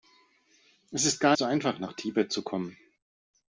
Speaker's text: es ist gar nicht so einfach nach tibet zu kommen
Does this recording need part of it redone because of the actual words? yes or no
yes